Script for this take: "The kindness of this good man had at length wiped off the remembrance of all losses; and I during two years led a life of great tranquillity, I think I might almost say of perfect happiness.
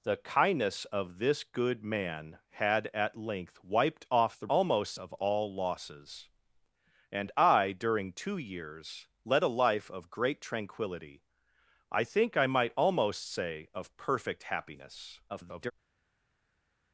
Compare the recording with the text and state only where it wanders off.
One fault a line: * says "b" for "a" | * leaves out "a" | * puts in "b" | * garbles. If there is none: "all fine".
* says "almost" for "remembrance"
* garbles